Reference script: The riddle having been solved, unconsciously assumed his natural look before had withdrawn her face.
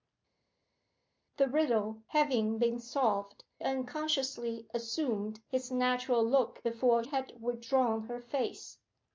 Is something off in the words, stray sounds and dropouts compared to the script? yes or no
no